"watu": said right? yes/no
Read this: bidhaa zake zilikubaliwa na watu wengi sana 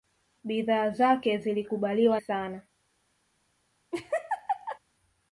no